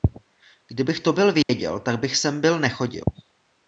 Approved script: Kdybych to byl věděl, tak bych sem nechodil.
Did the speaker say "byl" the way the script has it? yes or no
yes